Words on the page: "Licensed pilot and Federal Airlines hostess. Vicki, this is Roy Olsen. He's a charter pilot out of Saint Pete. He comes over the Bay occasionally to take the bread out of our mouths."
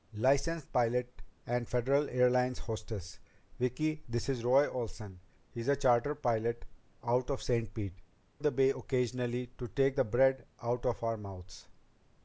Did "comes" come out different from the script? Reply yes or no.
yes